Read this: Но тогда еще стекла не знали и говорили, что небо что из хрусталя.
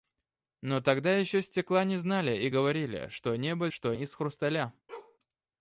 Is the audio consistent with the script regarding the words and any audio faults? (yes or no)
no